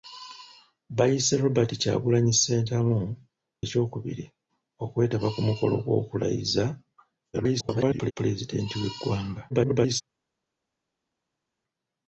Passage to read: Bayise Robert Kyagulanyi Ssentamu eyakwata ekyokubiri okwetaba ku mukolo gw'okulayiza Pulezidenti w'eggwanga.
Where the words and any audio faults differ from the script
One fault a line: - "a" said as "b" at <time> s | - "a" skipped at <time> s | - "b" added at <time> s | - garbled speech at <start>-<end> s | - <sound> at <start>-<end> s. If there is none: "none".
- "eyakwata" skipped at 3.0 s
- garbled speech at 7.3-8.1 s
- garbled speech at 9.5-10.0 s